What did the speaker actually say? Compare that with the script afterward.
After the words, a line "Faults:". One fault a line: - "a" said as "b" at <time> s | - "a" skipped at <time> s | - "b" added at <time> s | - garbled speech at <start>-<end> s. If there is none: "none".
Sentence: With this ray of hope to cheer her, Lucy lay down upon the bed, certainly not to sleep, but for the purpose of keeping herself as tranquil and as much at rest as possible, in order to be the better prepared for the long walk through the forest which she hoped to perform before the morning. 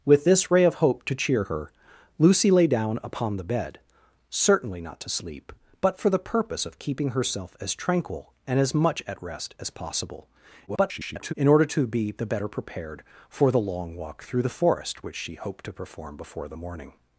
With this ray of hope to cheer her, Lucy lay down upon the bed, certainly not to sleep, but for the purpose of keeping herself as tranquil and as much at rest as possible, [garbled] in order to be the better prepared for the long walk through the forest which she hoped to perform before the morning.
Faults:
- garbled speech at 10.7-11.3 s